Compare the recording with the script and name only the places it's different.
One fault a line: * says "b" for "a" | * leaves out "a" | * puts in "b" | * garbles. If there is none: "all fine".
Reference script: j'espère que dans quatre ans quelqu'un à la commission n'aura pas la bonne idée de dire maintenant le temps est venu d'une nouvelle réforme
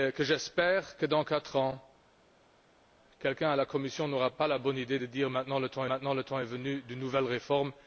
* puts in "maintenant le temps"